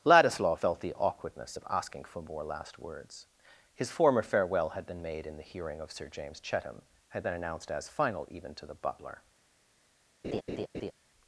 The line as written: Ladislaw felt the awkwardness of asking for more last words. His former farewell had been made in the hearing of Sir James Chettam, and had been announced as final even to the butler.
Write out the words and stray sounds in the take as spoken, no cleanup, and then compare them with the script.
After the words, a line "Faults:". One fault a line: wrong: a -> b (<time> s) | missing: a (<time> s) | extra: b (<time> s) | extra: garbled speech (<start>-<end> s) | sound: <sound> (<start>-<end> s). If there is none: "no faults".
Ladislaw felt the awkwardness of asking for more last words. His former farewell had been made in the hearing of Sir James Chettam, had been announced as final even to the butler.
Faults:
missing: and (6.8 s)
sound: laugh (10.2-10.9 s)